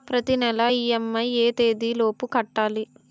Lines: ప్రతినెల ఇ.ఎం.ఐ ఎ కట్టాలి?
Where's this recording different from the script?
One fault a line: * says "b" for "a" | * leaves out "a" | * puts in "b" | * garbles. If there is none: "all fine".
* puts in "తేదీ లోపు"